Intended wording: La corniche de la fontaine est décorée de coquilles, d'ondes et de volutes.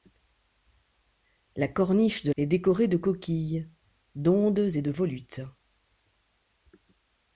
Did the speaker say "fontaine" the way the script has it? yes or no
no